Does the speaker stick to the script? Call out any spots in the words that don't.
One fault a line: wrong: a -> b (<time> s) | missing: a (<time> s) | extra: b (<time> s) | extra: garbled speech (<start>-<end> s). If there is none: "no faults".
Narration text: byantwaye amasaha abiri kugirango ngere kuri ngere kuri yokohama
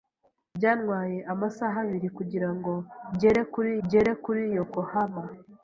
no faults